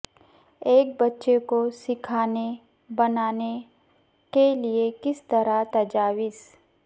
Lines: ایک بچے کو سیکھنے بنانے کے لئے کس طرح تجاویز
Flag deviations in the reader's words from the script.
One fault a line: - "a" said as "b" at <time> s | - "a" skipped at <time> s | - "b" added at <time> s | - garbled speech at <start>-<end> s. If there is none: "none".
none